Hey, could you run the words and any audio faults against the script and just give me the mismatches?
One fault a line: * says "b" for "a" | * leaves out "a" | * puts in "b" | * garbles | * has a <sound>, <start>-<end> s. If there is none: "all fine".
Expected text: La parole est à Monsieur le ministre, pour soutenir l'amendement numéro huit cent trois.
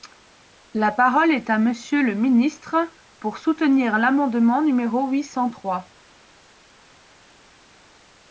all fine